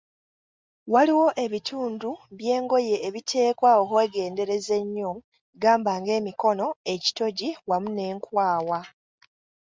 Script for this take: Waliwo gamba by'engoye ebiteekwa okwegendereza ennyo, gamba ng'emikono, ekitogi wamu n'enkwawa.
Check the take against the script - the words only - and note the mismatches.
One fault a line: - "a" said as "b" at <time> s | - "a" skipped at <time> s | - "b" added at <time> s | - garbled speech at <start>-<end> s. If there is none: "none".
- "gamba" said as "ebitundu" at 1.4 s